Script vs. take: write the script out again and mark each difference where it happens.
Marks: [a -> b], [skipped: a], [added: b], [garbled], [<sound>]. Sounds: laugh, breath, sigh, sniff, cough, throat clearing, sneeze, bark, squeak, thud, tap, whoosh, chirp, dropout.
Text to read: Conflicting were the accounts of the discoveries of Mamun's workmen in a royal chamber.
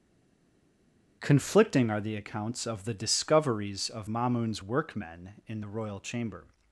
Conflicting [were -> are] the accounts of the discoveries of Mamun's workmen in [a -> the] royal chamber.